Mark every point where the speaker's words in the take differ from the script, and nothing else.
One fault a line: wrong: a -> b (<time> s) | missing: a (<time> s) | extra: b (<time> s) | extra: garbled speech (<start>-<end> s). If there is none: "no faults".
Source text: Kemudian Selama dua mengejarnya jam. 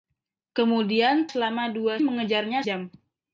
no faults